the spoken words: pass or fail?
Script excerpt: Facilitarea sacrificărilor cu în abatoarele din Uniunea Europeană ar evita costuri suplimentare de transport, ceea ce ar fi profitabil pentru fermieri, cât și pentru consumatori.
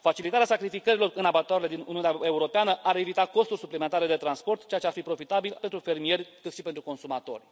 pass